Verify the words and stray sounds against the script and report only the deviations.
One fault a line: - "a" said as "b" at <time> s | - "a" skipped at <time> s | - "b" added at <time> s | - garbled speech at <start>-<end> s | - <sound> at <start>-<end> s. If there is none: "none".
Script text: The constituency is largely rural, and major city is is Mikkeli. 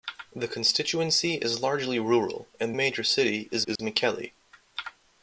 - dropout at 3.8-3.8 s